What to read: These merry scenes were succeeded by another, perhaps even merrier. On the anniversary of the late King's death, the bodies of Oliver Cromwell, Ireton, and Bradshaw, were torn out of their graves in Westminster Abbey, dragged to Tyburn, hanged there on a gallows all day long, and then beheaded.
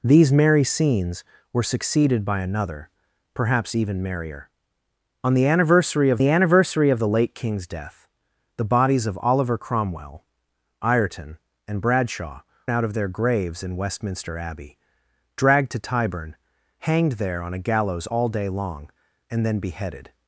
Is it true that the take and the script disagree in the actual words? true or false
true